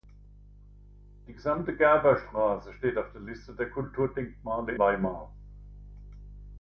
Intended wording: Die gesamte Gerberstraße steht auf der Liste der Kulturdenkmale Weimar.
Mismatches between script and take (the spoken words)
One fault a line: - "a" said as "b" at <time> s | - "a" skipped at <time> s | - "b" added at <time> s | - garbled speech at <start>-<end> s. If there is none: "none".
none